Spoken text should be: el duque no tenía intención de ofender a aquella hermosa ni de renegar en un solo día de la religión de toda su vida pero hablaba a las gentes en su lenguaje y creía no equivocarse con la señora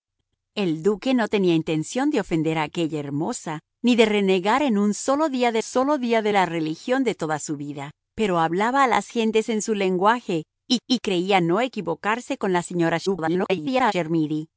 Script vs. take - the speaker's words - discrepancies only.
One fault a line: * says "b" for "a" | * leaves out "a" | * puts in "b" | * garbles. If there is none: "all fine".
* puts in "solo día de"
* puts in "y"
* garbles